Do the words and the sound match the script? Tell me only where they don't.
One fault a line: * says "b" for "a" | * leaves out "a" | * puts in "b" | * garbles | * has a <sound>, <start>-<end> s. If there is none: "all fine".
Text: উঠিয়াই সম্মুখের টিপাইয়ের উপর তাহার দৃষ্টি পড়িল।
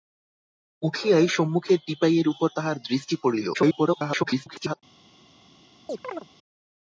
* garbles
* has a chirp, 5.9-6.3 s